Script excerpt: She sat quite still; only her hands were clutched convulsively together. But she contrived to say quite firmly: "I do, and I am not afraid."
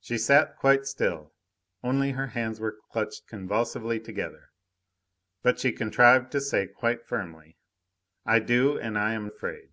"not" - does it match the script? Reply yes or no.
no